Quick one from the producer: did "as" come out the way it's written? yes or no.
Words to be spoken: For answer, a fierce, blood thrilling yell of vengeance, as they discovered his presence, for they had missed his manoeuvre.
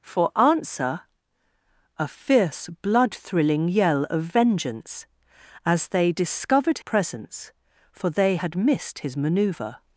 yes